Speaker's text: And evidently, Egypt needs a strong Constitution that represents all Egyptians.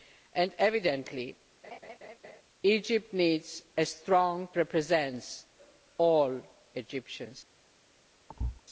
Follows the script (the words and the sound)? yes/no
no